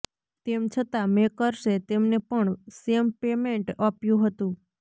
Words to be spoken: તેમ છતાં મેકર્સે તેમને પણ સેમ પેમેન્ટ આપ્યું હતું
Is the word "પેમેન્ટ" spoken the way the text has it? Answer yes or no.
yes